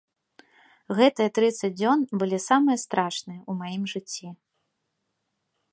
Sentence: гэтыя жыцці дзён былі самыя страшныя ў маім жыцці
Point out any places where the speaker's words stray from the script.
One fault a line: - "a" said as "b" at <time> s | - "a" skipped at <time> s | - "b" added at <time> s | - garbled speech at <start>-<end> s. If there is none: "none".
- "жыцці" said as "трыццаць" at 1.4 s